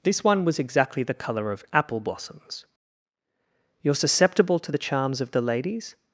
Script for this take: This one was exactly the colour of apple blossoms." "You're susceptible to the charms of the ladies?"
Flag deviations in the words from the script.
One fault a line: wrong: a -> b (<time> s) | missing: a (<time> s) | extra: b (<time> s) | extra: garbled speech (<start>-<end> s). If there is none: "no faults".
no faults